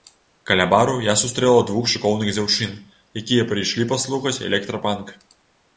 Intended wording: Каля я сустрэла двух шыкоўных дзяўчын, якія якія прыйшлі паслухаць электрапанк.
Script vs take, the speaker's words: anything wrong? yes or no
yes